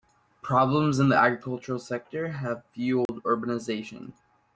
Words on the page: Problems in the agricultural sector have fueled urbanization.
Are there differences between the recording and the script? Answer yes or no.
no